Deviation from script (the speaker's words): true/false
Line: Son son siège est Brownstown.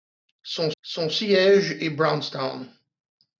false